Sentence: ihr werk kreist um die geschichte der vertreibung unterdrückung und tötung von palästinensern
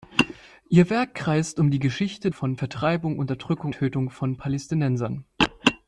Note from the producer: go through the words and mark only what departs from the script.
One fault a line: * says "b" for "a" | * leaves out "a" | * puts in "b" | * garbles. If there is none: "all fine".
* says "von" for "der"
* leaves out "und"